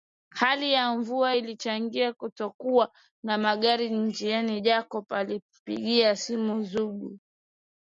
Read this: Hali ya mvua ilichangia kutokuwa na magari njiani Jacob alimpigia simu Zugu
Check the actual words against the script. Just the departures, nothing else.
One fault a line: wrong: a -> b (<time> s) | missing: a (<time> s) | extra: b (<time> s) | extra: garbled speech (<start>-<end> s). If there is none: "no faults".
no faults